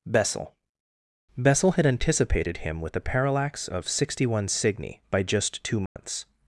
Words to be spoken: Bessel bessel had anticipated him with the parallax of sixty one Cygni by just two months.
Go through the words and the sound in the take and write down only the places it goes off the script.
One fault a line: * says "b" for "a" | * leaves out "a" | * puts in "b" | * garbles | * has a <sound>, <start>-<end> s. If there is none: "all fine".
* has a dropout, 5.9-6.0 s